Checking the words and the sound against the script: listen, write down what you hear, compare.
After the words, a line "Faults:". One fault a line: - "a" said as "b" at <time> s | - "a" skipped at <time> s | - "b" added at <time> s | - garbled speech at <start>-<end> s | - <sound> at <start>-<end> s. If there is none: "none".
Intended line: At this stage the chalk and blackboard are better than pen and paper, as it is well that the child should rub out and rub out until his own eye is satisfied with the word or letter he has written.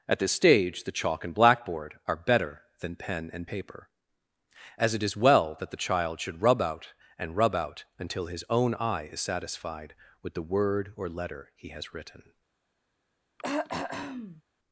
At this stage the chalk and blackboard are better than pen and paper, as it is well that the child should rub out and rub out until his own eye is satisfied with the word or letter he has written.
Faults:
- throat clearing at 13.4-14.4 s